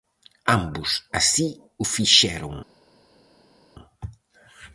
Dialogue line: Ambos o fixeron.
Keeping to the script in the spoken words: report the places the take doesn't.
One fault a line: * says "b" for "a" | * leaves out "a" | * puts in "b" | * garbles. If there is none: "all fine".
* puts in "así"